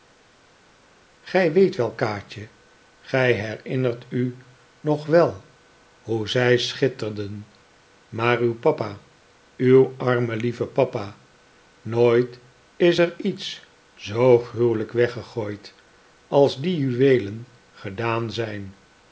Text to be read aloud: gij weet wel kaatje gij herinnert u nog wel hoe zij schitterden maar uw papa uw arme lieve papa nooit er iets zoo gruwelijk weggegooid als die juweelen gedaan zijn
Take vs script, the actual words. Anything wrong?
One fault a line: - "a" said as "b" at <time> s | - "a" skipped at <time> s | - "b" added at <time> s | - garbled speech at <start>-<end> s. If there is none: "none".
- "is" added at 12.8 s